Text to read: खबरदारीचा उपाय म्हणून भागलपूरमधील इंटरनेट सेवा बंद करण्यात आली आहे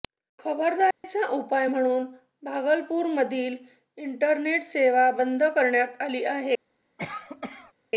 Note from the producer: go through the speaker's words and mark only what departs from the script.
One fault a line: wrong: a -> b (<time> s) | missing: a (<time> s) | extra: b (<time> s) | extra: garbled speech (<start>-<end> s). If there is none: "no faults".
no faults